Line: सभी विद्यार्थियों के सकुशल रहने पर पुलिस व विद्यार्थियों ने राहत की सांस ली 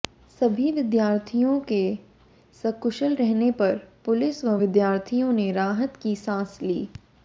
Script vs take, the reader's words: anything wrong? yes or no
no